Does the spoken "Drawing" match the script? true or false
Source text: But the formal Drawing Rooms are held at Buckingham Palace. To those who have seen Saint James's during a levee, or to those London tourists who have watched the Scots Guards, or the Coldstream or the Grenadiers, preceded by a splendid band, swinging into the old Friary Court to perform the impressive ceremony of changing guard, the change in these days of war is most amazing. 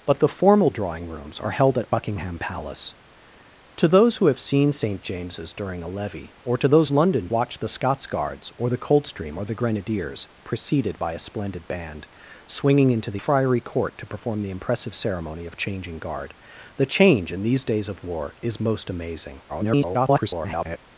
true